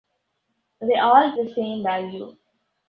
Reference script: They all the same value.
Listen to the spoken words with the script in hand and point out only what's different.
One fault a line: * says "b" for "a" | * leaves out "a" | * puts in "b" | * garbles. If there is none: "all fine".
all fine